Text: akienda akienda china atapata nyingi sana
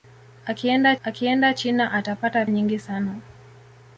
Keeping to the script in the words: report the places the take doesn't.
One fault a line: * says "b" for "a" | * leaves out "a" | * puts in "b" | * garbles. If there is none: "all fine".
all fine